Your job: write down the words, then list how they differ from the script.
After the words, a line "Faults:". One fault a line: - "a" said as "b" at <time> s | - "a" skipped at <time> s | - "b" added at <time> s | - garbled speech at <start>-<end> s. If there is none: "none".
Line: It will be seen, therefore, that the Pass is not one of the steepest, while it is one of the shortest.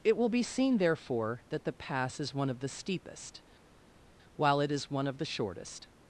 It will be seen, therefore, that the Pass is one of the steepest, while it is one of the shortest.
Faults:
- "not" skipped at 2.3 s